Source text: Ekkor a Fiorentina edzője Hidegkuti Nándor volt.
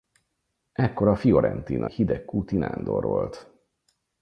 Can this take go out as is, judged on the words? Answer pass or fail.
fail